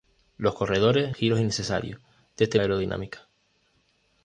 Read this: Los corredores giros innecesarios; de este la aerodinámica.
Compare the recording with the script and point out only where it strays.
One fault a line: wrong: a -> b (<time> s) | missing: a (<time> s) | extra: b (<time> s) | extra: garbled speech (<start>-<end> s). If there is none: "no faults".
no faults